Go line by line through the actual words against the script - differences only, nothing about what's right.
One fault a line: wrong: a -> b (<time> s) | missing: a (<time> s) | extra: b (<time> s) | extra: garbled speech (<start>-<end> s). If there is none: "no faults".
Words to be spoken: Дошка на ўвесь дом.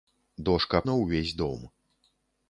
no faults